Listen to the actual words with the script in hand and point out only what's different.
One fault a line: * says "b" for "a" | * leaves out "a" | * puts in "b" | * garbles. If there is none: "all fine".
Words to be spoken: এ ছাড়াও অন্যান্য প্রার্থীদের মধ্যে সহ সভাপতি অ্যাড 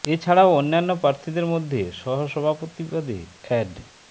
* puts in "পদে"